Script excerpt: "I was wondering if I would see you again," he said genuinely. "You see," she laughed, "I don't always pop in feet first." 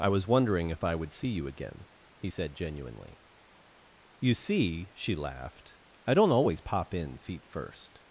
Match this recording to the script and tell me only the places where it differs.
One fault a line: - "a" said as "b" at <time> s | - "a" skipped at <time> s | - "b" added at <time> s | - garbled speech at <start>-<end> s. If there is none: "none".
none